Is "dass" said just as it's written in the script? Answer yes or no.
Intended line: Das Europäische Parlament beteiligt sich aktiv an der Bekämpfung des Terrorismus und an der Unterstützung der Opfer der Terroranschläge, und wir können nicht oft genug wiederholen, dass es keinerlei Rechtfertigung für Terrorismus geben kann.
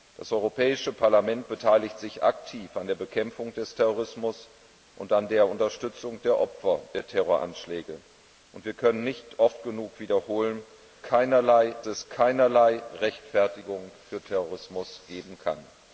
no